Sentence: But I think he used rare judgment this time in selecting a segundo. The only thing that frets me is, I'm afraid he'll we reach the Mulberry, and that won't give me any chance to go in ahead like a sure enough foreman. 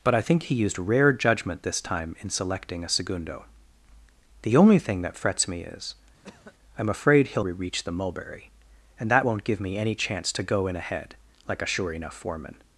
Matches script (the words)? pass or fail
pass